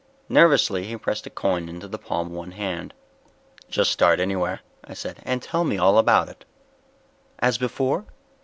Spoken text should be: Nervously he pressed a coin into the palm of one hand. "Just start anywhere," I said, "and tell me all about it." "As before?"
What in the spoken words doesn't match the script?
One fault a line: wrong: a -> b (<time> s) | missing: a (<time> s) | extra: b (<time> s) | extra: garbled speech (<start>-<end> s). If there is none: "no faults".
missing: of (2.3 s)